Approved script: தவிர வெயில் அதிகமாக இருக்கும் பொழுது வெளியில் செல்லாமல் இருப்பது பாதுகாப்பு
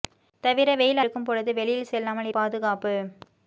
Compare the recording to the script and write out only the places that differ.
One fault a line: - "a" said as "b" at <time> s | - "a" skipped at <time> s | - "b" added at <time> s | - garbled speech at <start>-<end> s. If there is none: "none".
- "அதிகமாக" skipped at 1.0 s
- "இருப்பது" skipped at 2.3 s